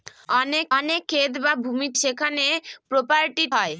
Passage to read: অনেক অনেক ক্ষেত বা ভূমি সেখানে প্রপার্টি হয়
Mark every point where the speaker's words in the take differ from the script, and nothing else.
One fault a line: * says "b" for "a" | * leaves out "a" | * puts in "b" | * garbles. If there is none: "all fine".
all fine